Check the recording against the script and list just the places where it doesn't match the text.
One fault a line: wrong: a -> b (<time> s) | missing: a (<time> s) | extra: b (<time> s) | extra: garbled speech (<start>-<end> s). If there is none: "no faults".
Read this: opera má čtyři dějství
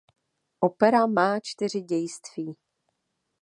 no faults